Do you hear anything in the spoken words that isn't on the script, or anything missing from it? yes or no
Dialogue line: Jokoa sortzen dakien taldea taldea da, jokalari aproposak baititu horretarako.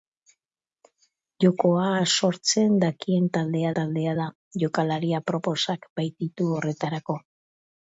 no